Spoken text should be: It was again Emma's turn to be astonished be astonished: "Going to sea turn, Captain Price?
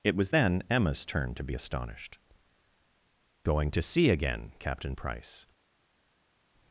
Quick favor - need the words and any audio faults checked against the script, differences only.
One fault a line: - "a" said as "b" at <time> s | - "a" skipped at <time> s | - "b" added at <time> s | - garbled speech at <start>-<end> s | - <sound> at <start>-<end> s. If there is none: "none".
- "again" said as "then" at 0.3 s
- "be astonished" skipped at 2.2 s
- "turn" said as "again" at 4.1 s